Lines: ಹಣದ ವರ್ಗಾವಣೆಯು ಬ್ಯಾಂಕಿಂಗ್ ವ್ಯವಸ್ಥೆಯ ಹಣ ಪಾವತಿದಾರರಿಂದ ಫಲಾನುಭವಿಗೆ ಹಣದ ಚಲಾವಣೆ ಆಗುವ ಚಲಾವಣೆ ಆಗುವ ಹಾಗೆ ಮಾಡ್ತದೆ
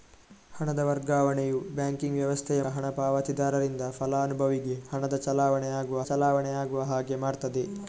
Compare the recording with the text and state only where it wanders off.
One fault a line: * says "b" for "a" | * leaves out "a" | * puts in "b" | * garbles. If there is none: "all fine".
all fine